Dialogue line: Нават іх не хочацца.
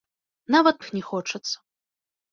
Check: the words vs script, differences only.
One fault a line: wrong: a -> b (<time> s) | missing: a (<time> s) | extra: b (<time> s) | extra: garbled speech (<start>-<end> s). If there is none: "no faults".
no faults